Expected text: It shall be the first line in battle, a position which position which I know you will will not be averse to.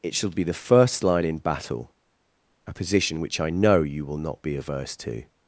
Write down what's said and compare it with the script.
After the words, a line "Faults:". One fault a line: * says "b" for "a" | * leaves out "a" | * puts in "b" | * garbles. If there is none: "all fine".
It shall be the first line in battle, a position which I know you will not be averse to.
Faults:
* leaves out "position which"
* leaves out "will"